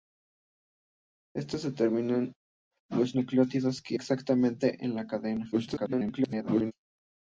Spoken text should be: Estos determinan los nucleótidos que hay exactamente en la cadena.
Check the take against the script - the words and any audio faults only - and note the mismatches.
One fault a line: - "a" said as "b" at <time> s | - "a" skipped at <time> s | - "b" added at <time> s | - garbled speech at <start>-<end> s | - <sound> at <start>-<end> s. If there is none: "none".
- "hay" skipped at 4.0 s
- garbled speech at 5.5-6.7 s